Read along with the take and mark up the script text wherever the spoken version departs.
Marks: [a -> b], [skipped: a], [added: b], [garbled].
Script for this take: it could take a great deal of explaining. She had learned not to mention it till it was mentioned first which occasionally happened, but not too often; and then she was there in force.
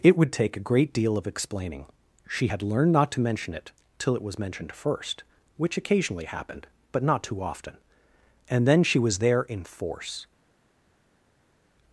it [could -> would] take a great deal of explaining. She had learned not to mention it till it was mentioned first which occasionally happened, but not too often; and then she was there in force.